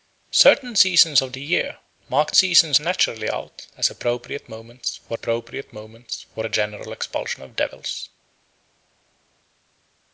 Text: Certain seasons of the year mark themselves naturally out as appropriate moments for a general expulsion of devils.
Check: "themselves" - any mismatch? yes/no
yes